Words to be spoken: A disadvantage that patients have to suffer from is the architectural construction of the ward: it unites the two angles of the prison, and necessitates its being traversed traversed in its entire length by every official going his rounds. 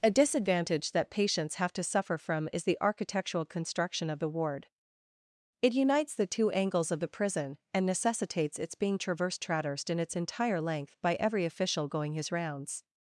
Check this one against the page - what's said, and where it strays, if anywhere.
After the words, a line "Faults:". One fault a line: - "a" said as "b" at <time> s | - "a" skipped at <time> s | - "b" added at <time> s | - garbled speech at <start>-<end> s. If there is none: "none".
A disadvantage that patients have to suffer from is the architectural construction of the ward: it unites the two angles of the prison, and necessitates its being traversed traversed in its entire length by every official going his rounds.
Faults:
none